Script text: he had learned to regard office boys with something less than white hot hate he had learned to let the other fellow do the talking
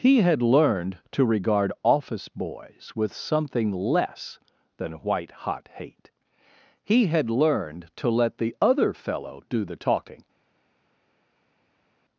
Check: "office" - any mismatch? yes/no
no